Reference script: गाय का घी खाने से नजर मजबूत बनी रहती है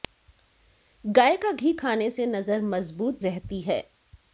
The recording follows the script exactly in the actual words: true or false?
false